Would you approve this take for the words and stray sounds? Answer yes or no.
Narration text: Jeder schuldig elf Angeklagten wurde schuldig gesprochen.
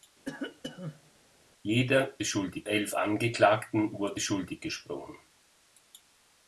no